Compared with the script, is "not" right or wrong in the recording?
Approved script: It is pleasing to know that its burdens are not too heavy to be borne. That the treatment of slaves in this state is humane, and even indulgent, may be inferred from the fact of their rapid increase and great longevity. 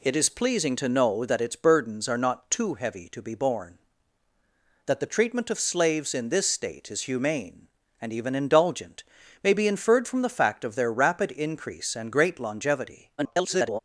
right